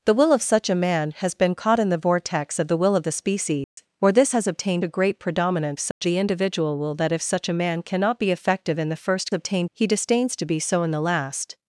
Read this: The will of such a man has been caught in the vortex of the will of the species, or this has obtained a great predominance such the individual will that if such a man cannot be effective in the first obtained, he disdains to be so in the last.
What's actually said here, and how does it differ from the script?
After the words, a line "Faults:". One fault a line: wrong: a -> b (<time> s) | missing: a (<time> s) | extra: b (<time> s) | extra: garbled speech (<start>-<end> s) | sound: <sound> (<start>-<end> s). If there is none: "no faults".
The will of such a man has been caught in the vortex of the will of the species, or this has obtained a great predominance such the individual will that if such a man cannot be effective in the first obtained, he disdains to be so in the last.
Faults:
sound: dropout (3.6-3.8 s)
sound: dropout (5.9-6.0 s)